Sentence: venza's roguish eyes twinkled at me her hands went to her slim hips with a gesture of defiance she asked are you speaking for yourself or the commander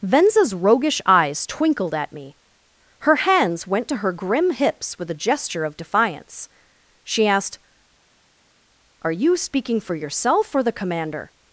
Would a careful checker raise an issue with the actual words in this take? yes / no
yes